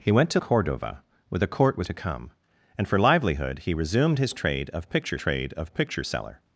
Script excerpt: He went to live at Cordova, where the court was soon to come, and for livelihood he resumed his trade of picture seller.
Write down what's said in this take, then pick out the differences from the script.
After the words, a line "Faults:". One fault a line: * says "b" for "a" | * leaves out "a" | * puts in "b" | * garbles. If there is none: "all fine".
He went to Cordova, where the court was to come, and for livelihood he resumed his trade of picture trade of picture seller.
Faults:
* leaves out "live at"
* leaves out "soon"
* puts in "trade of picture"